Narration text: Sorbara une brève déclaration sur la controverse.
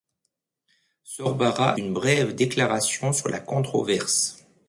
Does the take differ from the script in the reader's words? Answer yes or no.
no